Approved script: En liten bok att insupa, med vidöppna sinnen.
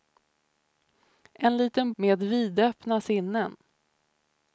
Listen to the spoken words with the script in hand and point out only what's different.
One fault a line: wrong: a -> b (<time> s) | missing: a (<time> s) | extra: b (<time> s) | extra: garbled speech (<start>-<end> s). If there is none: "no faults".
missing: bok att insupa (1.9 s)